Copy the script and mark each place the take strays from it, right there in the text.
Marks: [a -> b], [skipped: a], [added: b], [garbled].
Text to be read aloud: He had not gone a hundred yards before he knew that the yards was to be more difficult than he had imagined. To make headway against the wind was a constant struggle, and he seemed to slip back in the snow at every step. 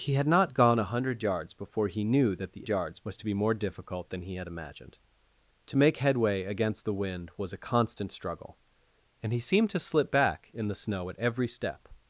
He had not gone a hundred yards before he knew that the yards was to be more difficult than he had imagined. To make headway against the wind was a constant struggle, and he seemed to slip back in the snow at every step.